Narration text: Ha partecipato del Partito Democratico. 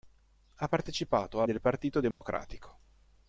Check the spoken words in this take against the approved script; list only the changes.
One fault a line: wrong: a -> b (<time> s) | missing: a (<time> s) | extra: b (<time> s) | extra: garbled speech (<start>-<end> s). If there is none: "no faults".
no faults